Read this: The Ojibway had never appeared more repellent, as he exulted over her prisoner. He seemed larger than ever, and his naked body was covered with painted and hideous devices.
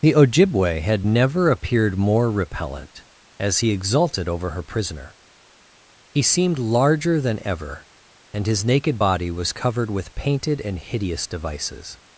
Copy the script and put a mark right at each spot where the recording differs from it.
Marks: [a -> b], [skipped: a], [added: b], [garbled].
The Ojibway had never appeared more repellent, as he exulted over her prisoner. He seemed larger than ever, and his naked body was covered with painted and hideous devices.